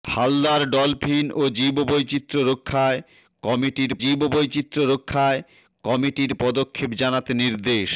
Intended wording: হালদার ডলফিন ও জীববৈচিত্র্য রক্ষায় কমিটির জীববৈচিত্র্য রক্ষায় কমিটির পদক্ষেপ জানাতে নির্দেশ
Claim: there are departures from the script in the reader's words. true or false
false